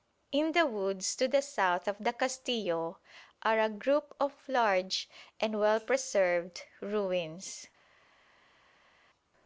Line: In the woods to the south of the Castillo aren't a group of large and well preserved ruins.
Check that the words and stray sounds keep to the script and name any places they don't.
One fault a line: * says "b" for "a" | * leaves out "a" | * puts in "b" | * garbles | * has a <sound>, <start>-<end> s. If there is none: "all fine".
* says "are" for "aren't"